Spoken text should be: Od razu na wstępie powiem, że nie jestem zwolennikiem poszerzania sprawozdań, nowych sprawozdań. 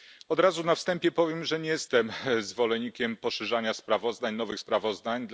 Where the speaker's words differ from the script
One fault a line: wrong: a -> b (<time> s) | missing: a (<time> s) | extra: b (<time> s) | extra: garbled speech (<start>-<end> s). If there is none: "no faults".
no faults